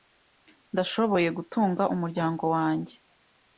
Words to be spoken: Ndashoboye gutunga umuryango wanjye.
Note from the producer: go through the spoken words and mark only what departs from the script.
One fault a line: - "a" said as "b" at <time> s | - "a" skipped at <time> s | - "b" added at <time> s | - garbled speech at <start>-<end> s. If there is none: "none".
none